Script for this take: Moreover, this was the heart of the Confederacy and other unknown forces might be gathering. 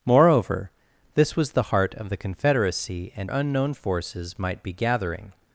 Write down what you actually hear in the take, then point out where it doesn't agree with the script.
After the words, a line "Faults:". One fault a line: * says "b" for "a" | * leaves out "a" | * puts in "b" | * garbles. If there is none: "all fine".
Moreover, this was the heart of the Confederacy and unknown forces might be gathering.
Faults:
* leaves out "other"